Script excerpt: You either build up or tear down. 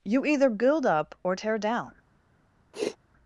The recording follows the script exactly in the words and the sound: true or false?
false